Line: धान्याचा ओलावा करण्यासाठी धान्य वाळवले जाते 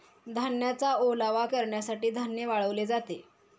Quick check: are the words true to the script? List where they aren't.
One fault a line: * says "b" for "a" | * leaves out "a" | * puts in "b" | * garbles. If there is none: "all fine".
all fine